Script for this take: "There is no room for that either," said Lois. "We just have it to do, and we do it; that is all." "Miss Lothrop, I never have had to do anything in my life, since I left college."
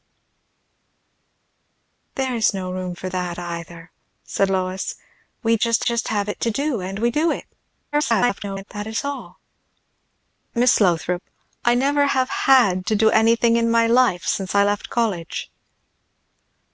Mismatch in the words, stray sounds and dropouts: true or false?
true